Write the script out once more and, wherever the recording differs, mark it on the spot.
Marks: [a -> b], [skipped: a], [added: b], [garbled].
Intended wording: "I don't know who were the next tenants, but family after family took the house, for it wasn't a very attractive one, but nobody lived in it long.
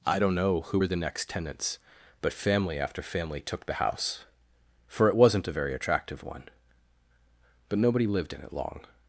"I don't know who were the next tenants, but family after family took the house, for it wasn't a very attractive one, but nobody lived in it long.